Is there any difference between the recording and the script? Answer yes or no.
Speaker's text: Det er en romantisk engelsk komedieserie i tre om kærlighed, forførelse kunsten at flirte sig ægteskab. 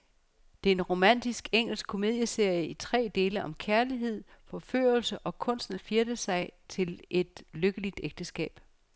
yes